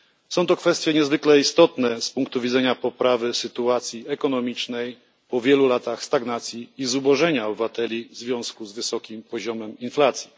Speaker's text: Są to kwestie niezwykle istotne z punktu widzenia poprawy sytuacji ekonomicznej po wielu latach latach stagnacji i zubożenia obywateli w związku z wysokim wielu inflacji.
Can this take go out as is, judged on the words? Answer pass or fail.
fail